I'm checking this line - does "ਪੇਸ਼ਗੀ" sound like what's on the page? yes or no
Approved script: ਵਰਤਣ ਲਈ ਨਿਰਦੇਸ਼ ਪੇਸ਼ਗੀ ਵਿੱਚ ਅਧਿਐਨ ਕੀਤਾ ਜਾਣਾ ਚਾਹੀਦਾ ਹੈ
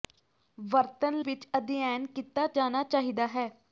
no